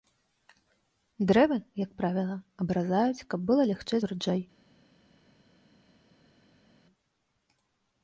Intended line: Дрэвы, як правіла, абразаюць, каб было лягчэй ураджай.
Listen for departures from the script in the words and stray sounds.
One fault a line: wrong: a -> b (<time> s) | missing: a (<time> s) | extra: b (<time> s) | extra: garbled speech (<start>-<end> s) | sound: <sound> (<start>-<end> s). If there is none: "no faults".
no faults